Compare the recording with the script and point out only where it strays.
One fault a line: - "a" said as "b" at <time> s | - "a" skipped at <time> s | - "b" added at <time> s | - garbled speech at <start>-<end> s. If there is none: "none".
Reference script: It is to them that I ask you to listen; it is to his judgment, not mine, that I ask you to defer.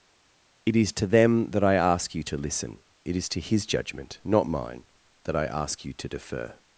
none